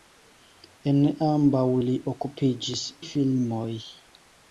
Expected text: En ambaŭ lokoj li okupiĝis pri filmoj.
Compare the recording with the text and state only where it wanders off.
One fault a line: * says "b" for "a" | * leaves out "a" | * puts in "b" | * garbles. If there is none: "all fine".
* leaves out "lokoj"
* leaves out "pri"